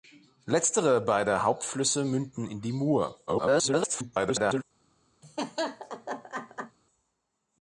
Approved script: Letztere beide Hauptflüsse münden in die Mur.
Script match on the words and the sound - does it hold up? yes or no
no